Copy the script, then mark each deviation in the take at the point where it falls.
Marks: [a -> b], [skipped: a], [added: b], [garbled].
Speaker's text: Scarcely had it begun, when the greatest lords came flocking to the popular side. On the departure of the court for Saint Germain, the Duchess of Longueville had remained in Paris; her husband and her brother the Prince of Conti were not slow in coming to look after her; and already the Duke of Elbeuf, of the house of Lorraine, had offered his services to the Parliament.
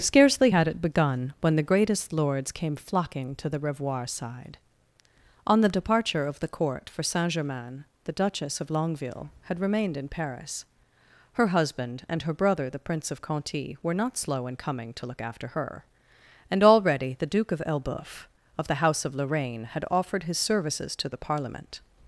Scarcely had it begun, when the greatest lords came flocking to the [popular -> revoir] side. On the departure of the court for Saint Germain, the Duchess of Longueville had remained in Paris; her husband and her brother the Prince of Conti were not slow in coming to look after her; and already the Duke of Elbeuf, of the house of Lorraine, had offered his services to the Parliament.